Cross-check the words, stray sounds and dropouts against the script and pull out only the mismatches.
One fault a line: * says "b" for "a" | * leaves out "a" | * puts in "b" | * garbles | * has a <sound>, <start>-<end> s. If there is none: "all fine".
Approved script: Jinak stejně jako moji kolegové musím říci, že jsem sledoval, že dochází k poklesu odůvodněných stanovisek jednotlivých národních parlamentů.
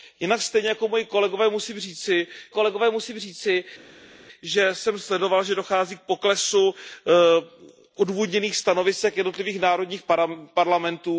* puts in "kolegové musím říci"